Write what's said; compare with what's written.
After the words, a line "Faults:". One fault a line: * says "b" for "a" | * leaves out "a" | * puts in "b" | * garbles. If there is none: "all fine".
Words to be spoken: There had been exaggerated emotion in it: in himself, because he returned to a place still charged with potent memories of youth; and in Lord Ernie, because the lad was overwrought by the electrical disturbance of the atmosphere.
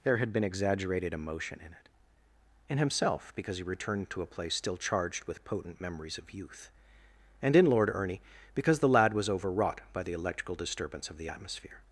There had been exaggerated emotion in it: in himself, because he returned to a place still charged with potent memories of youth; and in Lord Ernie, because the lad was overwrought by the electrical disturbance of the atmosphere.
Faults:
all fine